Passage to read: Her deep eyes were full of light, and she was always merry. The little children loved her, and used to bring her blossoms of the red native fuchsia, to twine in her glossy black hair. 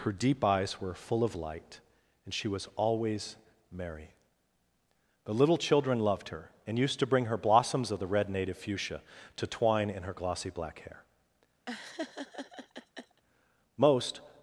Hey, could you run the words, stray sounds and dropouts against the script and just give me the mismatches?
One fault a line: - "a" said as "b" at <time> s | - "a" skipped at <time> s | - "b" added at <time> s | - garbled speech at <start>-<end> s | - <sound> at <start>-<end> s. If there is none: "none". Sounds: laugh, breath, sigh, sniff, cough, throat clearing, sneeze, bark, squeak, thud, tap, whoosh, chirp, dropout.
- laugh at 11.7-13.2 s
- "Most" added at 13.8 s